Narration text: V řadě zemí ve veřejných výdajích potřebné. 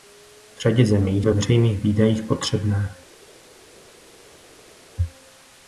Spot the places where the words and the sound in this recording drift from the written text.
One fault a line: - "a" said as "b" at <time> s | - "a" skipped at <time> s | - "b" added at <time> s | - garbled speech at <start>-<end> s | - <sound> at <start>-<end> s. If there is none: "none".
none